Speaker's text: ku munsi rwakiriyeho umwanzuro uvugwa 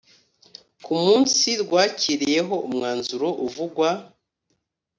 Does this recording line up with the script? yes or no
yes